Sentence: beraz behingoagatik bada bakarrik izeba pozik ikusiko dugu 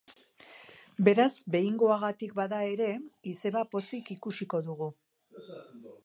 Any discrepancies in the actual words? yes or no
yes